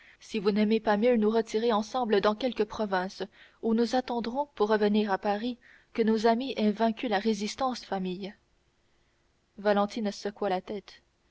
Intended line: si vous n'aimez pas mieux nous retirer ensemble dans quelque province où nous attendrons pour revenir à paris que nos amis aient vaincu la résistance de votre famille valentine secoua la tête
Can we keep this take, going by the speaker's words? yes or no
no